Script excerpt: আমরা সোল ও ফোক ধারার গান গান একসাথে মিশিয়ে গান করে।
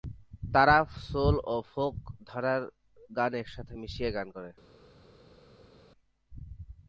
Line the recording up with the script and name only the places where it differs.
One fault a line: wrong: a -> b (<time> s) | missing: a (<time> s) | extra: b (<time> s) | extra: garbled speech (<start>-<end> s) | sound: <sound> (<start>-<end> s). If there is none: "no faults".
wrong: আমরা -> তারা (0.5 s)
missing: গান (3.3 s)